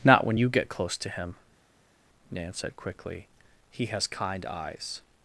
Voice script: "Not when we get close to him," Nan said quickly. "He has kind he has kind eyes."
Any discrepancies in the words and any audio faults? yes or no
yes